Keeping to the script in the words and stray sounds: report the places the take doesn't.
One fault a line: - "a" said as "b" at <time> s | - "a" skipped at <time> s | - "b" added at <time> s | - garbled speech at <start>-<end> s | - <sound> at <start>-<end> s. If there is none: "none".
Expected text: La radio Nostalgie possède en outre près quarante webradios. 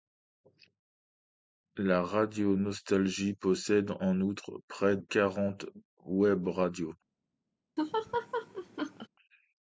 - laugh at 7.8-9.1 s